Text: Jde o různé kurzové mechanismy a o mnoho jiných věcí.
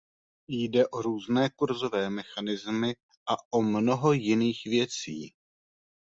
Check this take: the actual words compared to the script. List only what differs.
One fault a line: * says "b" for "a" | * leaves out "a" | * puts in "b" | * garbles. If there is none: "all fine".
all fine